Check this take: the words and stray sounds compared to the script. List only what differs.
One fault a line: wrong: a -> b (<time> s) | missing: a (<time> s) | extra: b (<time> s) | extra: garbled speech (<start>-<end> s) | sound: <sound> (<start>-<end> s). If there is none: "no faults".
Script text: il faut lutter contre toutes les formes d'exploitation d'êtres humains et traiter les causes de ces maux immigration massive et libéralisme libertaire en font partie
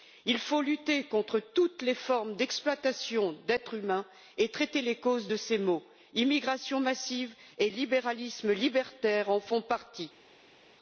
no faults